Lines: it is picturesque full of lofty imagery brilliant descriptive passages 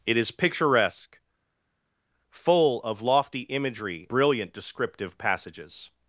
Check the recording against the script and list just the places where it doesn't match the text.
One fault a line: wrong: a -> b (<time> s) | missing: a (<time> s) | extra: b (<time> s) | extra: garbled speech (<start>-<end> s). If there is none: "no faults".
no faults